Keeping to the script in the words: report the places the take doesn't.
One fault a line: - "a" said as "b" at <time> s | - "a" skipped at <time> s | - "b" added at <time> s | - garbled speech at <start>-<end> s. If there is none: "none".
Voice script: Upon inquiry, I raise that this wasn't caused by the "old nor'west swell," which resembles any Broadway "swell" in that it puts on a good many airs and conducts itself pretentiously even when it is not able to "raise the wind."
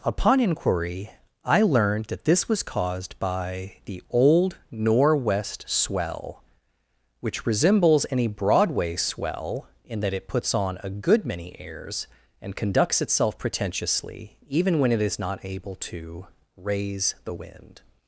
- "raise" said as "learned" at 1.6 s
- "wasn't" said as "was" at 2.5 s